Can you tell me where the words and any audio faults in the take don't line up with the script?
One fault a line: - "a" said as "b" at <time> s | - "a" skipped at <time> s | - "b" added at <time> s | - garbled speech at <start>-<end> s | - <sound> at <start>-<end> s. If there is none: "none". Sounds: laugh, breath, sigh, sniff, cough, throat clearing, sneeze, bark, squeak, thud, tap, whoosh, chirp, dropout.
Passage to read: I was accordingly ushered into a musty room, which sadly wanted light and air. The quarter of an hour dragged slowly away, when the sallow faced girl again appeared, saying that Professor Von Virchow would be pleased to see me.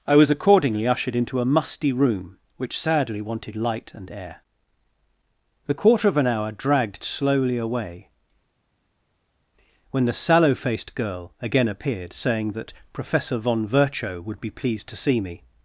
none